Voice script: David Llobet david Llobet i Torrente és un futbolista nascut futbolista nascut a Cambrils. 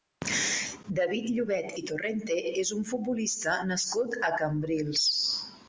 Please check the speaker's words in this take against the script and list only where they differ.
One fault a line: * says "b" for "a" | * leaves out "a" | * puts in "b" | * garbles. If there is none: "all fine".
* leaves out "david Llobet"
* leaves out "futbolista nascut"